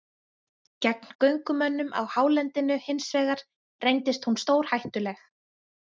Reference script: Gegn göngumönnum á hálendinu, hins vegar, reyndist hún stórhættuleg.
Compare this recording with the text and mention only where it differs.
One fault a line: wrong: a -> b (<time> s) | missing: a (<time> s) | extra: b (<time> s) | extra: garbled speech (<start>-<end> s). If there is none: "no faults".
no faults